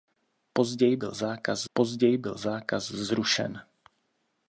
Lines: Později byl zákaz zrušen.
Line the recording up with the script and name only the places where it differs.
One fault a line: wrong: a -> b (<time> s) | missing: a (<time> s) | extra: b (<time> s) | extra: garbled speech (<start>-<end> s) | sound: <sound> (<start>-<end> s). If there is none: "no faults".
extra: později byl zákaz (1.7 s)